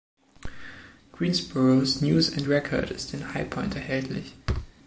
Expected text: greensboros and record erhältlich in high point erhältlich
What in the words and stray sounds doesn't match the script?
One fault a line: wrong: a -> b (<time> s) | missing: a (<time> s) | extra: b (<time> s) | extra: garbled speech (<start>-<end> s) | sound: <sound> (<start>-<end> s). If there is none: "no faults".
extra: news (2.0 s)
wrong: erhältlich -> ist (2.9 s)
sound: thud (4.5-4.7 s)